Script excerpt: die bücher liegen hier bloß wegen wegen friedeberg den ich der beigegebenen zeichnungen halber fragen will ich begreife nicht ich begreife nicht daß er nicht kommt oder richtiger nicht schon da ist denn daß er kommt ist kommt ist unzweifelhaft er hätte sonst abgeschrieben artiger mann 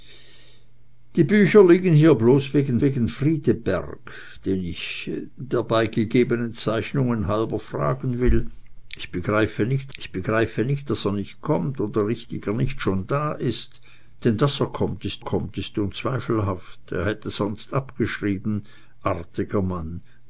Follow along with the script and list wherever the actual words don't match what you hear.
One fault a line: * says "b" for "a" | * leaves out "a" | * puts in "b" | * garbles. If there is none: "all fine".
all fine